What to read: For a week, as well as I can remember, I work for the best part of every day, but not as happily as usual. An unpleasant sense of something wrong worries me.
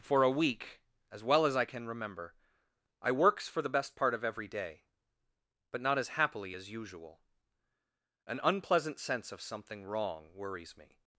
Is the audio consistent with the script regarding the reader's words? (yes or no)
no